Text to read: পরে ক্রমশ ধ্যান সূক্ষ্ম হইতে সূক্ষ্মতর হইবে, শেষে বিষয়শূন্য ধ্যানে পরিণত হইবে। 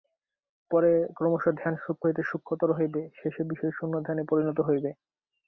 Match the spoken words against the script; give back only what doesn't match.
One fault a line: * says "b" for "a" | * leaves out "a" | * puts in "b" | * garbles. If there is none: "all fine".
all fine